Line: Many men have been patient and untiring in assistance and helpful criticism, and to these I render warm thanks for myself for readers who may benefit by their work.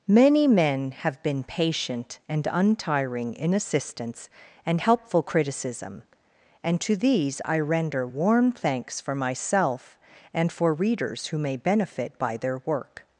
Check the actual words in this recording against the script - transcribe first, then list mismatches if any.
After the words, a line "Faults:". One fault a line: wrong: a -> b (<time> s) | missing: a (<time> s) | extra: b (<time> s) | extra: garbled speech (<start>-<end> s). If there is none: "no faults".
Many men have been patient and untiring in assistance and helpful criticism, and to these I render warm thanks for myself and for readers who may benefit by their work.
Faults:
extra: and (10.3 s)